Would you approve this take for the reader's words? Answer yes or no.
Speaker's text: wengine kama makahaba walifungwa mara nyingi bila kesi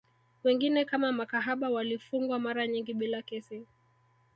yes